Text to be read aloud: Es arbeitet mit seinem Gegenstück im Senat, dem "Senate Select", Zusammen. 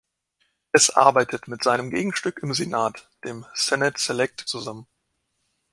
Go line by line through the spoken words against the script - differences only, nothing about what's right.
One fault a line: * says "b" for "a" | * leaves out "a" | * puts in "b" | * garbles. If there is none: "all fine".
all fine